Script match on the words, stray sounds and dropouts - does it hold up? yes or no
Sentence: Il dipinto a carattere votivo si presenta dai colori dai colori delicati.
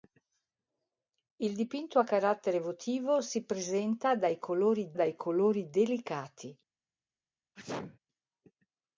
no